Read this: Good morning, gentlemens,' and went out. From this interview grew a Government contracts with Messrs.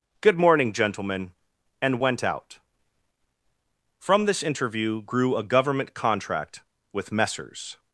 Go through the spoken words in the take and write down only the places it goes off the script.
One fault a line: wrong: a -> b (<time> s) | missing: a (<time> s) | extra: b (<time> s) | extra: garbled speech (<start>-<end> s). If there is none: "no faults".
wrong: gentlemens -> gentlemen (0.7 s)
wrong: contracts -> contract (5.9 s)